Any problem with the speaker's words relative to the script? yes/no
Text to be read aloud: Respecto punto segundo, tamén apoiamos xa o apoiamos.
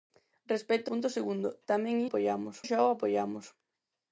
no